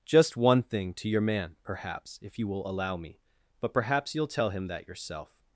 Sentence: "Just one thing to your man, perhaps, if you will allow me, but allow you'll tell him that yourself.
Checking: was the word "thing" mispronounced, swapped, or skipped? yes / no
no